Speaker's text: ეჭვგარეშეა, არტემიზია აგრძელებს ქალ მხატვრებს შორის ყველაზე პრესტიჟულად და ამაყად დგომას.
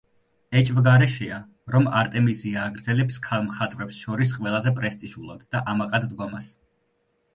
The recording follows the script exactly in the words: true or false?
false